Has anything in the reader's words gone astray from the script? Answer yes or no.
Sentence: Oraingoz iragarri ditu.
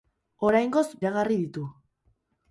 no